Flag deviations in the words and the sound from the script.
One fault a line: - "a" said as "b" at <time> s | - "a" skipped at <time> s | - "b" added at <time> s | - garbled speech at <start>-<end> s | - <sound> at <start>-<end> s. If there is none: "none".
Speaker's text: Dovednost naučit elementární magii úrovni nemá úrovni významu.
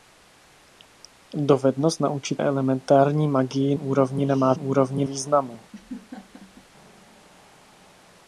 - laugh at 5.7-6.7 s